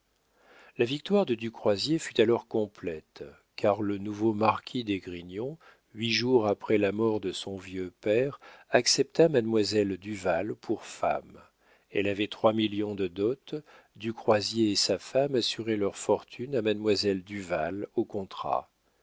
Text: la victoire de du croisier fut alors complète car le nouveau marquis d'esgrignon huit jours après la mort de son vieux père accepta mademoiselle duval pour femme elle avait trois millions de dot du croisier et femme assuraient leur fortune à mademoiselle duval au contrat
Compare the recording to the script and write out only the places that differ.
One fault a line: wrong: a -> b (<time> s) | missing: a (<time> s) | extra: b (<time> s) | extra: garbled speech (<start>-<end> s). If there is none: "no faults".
extra: sa (14.8 s)